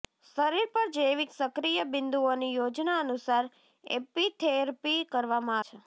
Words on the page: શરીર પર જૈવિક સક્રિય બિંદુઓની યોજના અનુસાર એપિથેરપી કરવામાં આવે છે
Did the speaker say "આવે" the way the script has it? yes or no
no